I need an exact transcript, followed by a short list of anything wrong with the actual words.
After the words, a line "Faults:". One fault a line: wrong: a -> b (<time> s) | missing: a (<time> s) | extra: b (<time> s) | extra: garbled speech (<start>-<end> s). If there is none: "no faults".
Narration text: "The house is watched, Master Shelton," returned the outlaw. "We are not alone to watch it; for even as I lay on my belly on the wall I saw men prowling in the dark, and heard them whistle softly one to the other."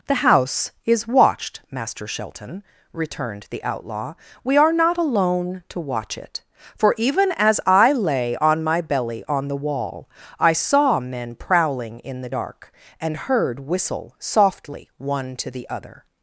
"The house is watched, Master Shelton," returned the outlaw. "We are not alone to watch it; for even as I lay on my belly on the wall I saw men prowling in the dark, and heard whistle softly one to the other."
Faults:
missing: them (13.6 s)